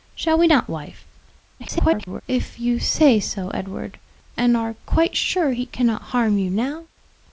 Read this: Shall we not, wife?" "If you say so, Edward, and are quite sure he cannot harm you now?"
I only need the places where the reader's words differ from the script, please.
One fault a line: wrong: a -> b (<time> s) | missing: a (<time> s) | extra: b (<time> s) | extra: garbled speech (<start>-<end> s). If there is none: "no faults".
extra: garbled speech (1.6-2.2 s)